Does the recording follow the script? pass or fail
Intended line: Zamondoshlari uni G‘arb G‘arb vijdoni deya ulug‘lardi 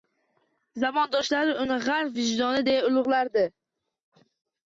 fail